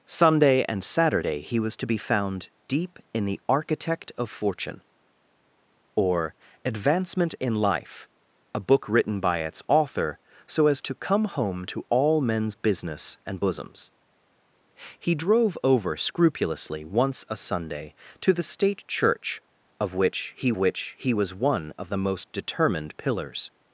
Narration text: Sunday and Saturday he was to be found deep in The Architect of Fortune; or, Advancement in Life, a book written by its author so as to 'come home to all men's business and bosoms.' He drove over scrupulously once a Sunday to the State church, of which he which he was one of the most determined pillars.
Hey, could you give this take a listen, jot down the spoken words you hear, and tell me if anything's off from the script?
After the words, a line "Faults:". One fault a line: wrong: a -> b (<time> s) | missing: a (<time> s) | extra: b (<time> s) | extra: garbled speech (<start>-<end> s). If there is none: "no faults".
Sunday and Saturday he was to be found deep in The Architect of Fortune; or, Advancement in Life, a book written by its author so as to 'come home to all men's business and bosoms.' He drove over scrupulously once a Sunday to the State church, of which he which he was one of the most determined pillars.
Faults:
no faults